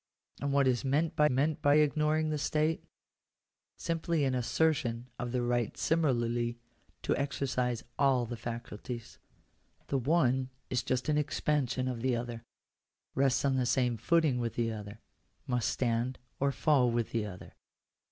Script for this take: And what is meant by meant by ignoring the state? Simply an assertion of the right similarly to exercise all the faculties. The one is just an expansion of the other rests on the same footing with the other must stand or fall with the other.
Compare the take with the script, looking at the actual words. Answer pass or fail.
pass